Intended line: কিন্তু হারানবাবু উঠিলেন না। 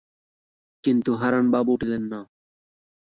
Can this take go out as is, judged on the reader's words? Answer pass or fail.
pass